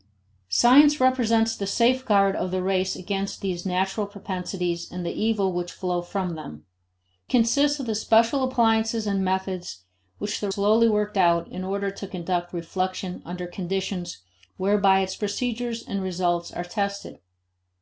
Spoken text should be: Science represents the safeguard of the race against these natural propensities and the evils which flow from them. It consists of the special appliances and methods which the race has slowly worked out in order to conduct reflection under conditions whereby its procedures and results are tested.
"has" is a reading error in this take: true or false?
true